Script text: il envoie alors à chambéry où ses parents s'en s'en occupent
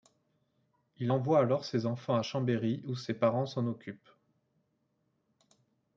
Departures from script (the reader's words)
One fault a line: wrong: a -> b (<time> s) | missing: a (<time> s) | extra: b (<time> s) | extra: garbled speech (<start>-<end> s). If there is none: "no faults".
extra: ses enfants (1.6 s)
missing: s'en (3.6 s)